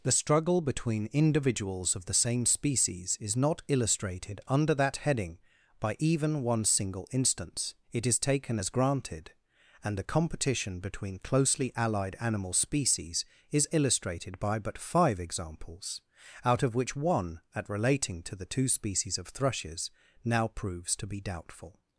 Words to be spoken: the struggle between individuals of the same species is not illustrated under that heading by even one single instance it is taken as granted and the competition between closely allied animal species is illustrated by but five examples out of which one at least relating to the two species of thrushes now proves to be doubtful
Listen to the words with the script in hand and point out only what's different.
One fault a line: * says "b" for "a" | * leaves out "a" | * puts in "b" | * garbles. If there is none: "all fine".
* leaves out "least"